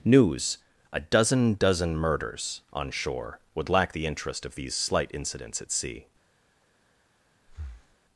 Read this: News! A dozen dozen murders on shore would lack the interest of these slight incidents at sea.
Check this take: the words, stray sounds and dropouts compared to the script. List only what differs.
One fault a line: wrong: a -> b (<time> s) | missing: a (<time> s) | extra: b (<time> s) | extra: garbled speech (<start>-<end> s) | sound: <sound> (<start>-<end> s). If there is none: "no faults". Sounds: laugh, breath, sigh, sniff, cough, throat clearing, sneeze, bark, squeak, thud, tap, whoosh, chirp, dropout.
sound: breath (7.5-8.0 s)